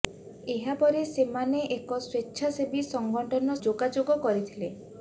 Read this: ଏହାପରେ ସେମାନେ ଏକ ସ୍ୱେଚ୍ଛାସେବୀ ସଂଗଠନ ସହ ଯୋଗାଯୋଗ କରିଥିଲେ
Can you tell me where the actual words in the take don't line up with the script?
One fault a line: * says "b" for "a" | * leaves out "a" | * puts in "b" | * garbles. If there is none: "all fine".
* leaves out "ସହ"